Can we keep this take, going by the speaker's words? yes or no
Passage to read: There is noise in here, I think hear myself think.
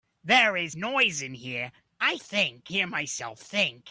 yes